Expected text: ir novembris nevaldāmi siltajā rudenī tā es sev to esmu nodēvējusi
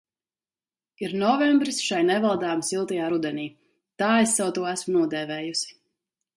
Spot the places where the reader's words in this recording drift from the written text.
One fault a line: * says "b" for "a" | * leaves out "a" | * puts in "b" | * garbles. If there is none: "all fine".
* puts in "šai"